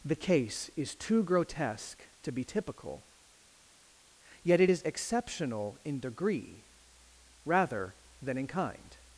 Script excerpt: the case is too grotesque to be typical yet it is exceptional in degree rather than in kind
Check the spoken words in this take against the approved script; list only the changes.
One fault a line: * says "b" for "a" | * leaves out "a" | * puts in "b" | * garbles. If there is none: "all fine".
all fine